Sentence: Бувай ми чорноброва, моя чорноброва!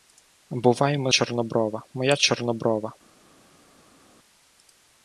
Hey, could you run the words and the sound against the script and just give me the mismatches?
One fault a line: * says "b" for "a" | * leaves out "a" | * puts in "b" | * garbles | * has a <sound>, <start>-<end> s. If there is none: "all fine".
all fine